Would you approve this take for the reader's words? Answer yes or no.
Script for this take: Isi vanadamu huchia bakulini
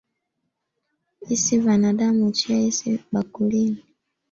no